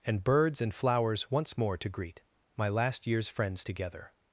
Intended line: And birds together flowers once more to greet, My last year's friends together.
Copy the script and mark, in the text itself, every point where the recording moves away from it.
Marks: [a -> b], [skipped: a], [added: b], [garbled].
And birds [together -> and] flowers once more to greet, My last year's friends together.